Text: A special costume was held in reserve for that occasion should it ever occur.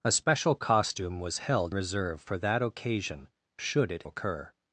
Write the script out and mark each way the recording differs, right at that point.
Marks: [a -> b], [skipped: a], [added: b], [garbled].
A special costume was held [skipped: in] reserve for that occasion should it [skipped: ever] occur.